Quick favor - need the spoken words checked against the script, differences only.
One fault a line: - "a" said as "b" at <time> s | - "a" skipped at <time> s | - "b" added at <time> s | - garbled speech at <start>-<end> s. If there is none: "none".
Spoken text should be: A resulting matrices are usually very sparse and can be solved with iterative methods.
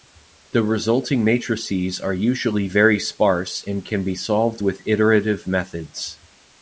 - "A" said as "The" at 0.5 s